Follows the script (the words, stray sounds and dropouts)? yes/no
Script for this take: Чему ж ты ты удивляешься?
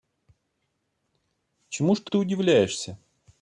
yes